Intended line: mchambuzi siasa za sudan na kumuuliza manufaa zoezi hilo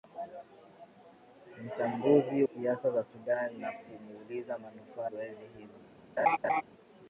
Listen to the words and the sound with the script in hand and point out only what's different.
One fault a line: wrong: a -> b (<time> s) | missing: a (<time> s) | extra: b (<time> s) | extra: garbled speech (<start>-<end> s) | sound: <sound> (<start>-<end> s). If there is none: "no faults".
sound: laugh (6.2-6.6 s)